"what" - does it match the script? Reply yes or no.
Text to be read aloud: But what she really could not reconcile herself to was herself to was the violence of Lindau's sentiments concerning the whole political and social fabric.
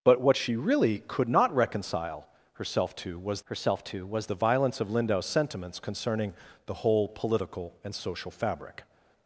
yes